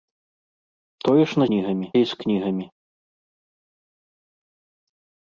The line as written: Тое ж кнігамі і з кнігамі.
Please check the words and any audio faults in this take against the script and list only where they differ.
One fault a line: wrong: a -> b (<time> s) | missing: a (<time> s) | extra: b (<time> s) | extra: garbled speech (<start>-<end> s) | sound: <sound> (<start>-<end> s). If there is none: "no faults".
no faults